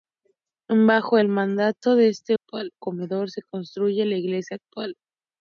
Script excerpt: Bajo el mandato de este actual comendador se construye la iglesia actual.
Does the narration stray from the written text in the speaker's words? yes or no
no